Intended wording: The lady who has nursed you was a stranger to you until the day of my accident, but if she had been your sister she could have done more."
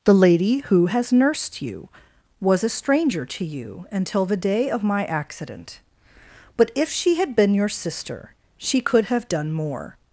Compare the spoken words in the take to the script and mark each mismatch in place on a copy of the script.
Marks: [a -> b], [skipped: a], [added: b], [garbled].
The lady who has nursed you was a stranger to you until the day of my accident, but if she had been your sister she could have done more."